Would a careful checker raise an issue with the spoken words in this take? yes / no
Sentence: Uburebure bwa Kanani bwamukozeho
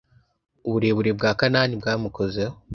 no